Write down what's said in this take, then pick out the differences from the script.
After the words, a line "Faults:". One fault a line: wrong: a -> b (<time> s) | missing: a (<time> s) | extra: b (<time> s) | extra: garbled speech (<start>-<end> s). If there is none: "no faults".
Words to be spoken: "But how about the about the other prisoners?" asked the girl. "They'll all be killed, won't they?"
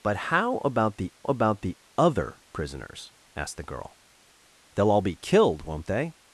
"But how about the about the other prisoners?" asked the girl. "They'll all be killed, won't they?"
Faults:
no faults